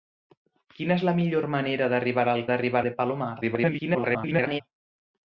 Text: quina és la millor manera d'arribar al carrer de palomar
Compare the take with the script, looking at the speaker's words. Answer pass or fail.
fail